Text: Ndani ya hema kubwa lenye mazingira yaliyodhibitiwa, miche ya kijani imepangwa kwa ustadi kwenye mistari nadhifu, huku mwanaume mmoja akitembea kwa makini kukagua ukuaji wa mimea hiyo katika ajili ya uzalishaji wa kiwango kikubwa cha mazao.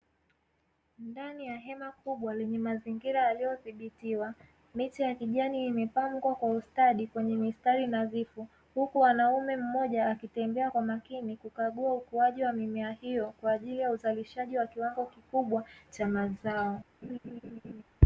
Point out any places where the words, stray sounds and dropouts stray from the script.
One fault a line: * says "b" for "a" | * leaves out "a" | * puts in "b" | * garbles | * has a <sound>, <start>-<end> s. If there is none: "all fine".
* says "kwa" for "katika"
* has a laugh, 17.0-17.8 s